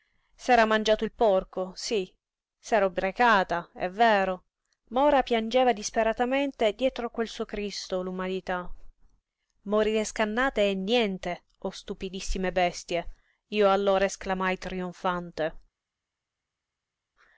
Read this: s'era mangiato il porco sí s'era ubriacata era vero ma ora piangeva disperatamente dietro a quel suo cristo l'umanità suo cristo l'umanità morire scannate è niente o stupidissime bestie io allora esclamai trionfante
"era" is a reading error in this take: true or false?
true